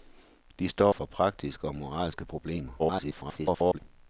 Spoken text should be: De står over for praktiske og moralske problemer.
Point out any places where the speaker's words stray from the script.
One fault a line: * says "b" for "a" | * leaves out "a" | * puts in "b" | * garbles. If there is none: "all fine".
* leaves out "over"
* garbles